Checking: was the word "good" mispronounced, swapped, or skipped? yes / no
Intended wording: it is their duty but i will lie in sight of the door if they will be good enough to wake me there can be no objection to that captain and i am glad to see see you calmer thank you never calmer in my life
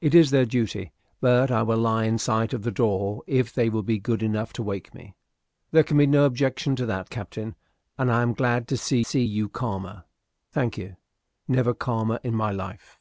no